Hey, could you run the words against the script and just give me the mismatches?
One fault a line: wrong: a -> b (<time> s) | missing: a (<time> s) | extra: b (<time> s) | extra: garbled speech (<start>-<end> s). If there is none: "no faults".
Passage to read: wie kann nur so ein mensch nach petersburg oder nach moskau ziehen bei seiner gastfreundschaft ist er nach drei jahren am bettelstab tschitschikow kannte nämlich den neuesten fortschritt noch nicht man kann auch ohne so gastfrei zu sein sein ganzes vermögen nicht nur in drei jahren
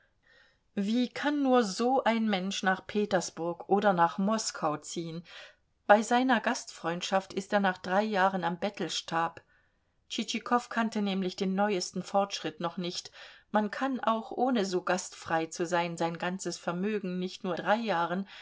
missing: in (17.6 s)